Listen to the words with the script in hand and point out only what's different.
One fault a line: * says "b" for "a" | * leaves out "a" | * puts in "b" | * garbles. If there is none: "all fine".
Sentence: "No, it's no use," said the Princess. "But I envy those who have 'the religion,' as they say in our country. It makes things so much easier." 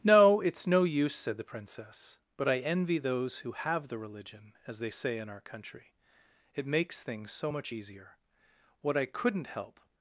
* puts in "What I couldn't help"